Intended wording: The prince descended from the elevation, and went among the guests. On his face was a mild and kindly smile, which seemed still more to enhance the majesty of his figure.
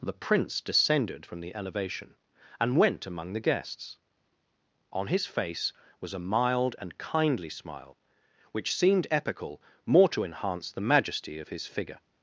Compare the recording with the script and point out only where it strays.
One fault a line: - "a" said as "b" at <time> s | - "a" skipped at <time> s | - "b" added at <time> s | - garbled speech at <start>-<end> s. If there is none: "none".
- "still" said as "epical" at 9.1 s